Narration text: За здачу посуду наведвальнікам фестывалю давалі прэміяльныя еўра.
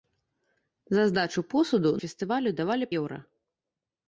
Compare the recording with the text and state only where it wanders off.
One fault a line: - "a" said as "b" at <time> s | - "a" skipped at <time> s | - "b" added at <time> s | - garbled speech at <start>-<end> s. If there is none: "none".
- "наведвальнікам" skipped at 1.9 s
- "прэміяльныя" skipped at 2.9 s